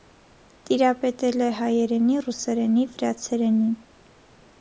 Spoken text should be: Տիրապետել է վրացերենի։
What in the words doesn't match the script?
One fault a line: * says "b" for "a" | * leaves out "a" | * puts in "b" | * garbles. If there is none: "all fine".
* puts in "հայերենի ռուսերենի"